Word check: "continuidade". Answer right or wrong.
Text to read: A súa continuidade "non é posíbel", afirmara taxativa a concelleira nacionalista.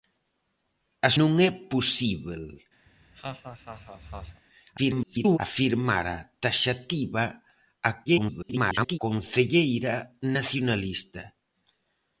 wrong